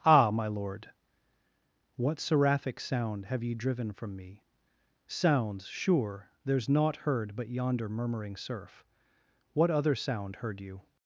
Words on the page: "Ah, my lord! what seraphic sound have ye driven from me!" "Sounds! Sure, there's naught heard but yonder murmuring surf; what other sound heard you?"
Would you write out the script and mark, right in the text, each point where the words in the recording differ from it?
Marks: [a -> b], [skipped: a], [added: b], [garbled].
"Ah, my lord! what seraphic sound have ye driven from me!" "Sounds! Sure, there's naught heard but yonder murmuring surf; what other sound heard you?"